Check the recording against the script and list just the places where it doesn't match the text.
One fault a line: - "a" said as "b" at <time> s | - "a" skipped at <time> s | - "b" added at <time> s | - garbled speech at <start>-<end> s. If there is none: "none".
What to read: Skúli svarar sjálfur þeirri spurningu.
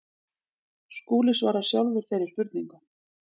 none